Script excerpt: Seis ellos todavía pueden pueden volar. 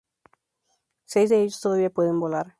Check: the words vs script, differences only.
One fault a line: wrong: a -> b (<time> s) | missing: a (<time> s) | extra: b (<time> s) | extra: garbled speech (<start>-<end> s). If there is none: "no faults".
extra: de (1.3 s)
missing: pueden (2.2 s)